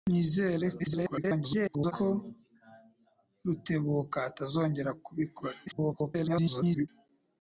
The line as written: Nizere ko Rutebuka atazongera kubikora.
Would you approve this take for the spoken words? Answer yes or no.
no